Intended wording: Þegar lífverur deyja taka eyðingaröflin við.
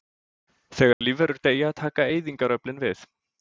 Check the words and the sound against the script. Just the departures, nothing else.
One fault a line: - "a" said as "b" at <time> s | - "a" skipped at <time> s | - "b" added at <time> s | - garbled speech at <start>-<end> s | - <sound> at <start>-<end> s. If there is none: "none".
- dropout at 0.9-1.0 s